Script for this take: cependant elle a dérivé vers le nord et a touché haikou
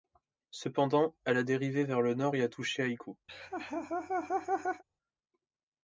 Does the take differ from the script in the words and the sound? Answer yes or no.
yes